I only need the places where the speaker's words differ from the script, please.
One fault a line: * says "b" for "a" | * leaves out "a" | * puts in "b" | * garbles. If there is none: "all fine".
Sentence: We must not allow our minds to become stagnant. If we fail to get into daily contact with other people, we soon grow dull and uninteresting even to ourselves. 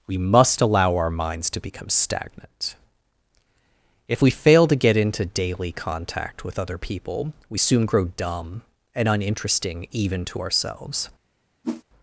* leaves out "not"
* says "dumb" for "dull"